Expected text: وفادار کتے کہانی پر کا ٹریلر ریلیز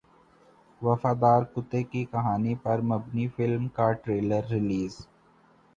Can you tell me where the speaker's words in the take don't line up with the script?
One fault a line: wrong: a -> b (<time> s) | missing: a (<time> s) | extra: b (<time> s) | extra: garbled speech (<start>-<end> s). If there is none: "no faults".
extra: کی (1.8 s)
extra: مبنی فلم (2.8 s)